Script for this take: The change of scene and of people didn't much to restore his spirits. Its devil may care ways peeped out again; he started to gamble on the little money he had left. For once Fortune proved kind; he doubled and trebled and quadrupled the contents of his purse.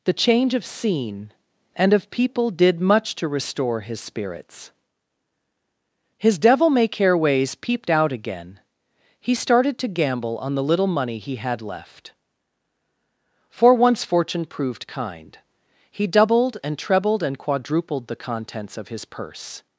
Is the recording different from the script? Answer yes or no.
yes